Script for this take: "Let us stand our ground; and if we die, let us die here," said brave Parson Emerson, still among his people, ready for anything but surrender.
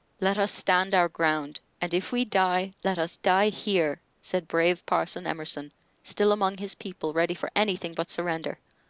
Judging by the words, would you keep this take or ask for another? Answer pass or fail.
pass